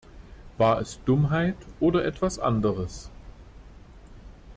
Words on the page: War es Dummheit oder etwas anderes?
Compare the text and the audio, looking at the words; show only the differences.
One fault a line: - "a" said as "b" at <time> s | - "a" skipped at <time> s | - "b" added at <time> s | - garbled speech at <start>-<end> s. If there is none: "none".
none